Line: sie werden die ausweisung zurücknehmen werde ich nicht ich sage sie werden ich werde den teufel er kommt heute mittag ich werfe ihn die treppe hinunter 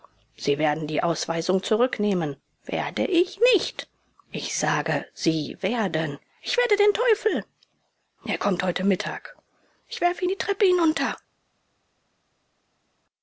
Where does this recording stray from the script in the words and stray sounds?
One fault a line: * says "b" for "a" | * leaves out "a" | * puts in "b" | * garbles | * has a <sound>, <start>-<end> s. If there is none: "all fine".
all fine